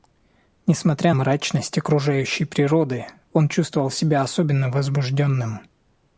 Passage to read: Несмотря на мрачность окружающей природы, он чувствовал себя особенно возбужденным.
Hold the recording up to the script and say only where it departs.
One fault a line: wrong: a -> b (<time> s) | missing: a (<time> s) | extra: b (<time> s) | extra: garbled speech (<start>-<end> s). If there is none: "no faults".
missing: на (1.1 s)